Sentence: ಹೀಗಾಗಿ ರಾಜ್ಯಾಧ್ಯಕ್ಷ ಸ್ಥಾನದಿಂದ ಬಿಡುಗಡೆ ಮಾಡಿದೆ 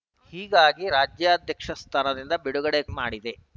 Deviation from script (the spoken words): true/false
false